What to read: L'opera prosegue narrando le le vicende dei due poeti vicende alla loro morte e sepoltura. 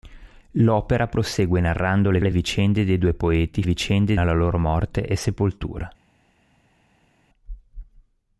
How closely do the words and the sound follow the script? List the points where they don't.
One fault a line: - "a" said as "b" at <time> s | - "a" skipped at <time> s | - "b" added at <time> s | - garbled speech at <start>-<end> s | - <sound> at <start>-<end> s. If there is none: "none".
none